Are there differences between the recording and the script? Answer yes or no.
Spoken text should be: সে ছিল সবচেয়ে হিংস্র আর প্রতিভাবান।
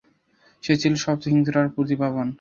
no